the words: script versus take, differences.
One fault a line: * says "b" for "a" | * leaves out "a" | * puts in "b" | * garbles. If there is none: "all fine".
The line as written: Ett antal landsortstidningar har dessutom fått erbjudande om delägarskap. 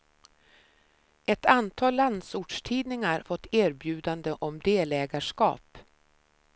* leaves out "har dessutom"